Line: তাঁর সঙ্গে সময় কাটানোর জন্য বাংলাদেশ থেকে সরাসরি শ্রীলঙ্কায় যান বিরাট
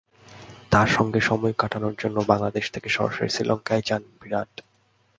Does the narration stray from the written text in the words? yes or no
no